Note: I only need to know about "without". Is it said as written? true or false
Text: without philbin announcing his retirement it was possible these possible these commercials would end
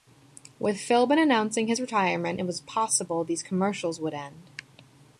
false